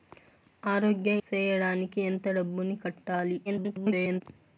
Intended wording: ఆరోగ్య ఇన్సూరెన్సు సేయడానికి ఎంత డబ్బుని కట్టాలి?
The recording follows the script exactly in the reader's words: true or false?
false